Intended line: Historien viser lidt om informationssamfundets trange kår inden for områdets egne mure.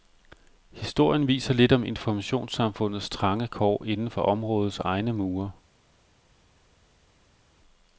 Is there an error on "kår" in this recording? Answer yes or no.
no